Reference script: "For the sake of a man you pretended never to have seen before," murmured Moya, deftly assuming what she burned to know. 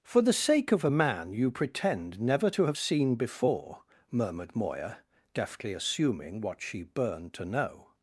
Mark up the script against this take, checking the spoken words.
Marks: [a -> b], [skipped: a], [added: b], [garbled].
"For the sake of a man you [pretended -> pretend] never to have seen before," murmured Moya, deftly assuming what she burned to know.